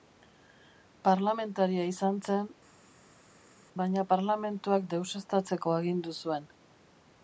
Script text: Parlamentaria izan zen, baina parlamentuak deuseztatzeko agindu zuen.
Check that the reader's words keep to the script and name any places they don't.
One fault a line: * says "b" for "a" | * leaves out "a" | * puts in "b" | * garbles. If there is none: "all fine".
all fine